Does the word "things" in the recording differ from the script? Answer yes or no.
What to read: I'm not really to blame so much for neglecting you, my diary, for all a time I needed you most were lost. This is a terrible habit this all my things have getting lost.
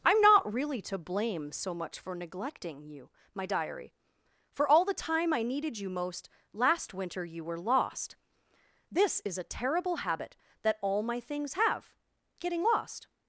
no